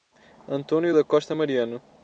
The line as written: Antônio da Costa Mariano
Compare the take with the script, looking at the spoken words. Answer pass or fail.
pass